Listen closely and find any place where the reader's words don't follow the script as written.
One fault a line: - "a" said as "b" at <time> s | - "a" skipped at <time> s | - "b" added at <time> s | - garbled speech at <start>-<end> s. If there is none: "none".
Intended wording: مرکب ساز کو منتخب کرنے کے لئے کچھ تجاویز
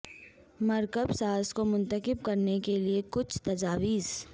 none